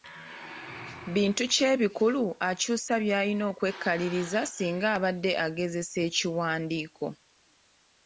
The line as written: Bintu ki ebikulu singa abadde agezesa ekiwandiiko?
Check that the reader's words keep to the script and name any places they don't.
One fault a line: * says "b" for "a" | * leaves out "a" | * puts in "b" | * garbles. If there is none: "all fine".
* puts in "akyusa by'alina okwekaliriza"